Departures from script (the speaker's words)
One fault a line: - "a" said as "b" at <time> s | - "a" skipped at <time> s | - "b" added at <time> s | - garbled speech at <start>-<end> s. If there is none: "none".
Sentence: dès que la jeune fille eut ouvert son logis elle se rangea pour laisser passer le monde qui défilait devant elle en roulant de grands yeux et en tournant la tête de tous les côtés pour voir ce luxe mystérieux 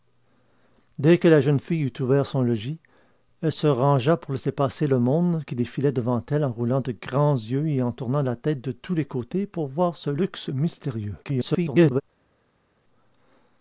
- garbled speech at 11.2-12.0 s